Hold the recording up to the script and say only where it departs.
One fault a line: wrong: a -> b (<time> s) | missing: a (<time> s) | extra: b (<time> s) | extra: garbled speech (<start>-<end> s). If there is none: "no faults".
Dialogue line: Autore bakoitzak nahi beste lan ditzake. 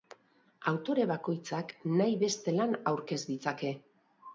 extra: aurkez (3.0 s)